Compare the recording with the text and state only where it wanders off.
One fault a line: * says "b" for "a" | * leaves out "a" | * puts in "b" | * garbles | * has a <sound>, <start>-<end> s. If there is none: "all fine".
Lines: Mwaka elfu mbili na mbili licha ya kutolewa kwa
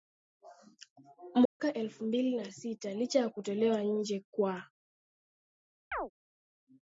* has a dropout, 1.5-1.6 s
* says "sita" for "mbili"
* puts in "nje"
* has a chirp, 5.9-6.1 s